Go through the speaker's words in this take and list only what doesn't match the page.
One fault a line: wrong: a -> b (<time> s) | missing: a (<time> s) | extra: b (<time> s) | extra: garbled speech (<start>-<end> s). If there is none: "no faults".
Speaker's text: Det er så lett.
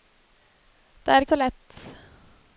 no faults